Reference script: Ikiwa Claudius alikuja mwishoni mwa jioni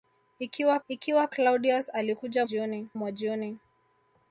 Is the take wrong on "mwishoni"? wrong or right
wrong